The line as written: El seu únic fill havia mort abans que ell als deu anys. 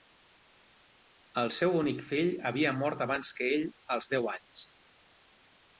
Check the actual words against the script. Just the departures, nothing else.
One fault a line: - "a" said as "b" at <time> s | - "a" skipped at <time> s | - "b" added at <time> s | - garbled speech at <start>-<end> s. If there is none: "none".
none